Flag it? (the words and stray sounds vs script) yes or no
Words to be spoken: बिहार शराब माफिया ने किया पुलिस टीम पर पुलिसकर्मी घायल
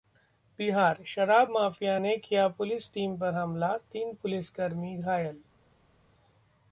yes